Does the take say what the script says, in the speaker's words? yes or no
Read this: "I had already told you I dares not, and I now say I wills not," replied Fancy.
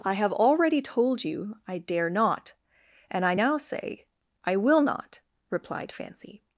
no